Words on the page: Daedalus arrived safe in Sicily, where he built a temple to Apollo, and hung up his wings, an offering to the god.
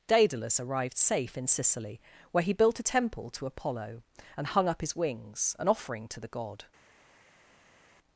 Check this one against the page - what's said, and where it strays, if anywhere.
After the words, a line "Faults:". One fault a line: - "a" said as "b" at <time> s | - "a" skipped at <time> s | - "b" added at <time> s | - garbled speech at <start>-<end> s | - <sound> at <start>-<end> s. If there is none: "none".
Daedalus arrived safe in Sicily, where he built a temple to Apollo, and hung up his wings, an offering to the god.
Faults:
none